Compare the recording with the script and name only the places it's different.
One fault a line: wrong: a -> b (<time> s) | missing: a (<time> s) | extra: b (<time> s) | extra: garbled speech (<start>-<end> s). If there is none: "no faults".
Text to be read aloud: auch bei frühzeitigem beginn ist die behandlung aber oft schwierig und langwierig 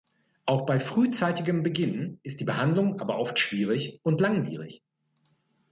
no faults